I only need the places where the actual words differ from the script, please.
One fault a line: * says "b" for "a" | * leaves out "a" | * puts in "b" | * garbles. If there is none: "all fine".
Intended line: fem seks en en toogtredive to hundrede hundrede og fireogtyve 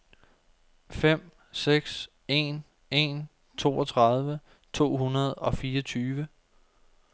* leaves out "hundrede"